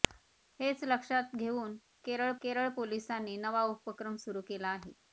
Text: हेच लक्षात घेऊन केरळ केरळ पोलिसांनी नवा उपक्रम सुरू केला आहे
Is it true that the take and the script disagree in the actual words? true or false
false